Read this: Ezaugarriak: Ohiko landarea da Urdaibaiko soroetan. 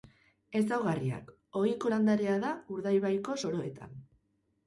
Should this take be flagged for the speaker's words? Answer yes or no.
no